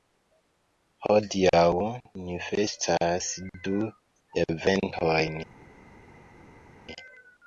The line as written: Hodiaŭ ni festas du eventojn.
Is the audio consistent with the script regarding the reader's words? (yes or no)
yes